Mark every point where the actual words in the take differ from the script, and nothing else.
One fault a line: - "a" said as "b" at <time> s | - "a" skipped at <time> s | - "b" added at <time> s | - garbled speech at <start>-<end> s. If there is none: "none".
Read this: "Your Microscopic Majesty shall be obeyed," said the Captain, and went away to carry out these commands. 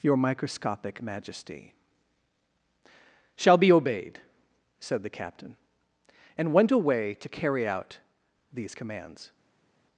none